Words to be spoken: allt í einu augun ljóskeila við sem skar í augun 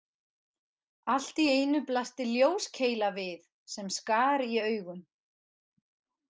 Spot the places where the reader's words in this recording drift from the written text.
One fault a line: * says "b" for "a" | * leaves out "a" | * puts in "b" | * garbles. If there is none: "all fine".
* says "blasti" for "augun"